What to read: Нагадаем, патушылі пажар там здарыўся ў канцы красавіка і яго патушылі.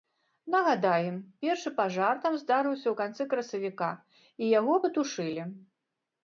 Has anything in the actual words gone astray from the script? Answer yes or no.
yes